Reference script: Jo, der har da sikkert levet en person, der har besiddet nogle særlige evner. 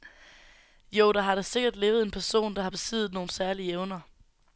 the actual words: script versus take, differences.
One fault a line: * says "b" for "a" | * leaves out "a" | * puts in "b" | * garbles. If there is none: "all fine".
all fine